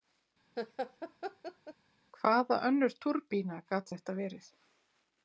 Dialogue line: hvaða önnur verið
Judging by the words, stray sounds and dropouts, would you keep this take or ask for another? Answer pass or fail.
fail